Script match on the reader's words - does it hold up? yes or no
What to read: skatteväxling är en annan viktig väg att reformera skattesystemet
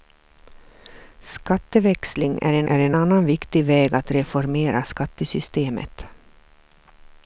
no